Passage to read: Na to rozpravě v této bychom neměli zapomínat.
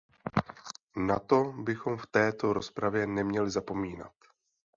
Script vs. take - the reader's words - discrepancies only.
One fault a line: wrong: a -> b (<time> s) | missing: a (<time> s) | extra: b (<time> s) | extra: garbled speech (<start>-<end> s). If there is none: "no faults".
wrong: rozpravě -> bychom (1.4 s)
wrong: bychom -> rozpravě (2.5 s)